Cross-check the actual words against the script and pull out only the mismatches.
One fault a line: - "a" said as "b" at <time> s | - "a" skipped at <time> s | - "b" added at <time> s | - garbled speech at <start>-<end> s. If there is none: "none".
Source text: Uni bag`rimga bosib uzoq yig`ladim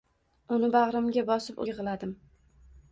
- "uzoq" skipped at 1.6 s